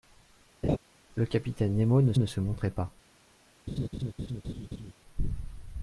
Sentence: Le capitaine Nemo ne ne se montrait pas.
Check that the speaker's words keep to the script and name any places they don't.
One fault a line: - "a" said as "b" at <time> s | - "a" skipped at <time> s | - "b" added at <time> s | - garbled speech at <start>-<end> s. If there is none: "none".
none